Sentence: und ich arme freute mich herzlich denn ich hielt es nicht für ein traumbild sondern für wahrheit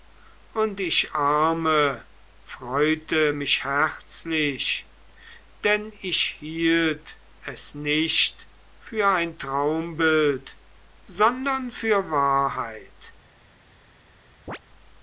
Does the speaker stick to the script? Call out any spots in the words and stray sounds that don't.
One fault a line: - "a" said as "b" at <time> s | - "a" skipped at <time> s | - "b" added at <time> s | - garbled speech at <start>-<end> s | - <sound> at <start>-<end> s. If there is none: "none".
- chirp at 14.5-14.6 s